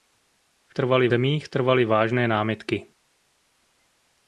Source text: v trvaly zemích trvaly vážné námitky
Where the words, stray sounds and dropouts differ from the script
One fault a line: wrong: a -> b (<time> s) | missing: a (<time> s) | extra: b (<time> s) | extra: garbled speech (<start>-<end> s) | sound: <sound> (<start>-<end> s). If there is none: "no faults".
no faults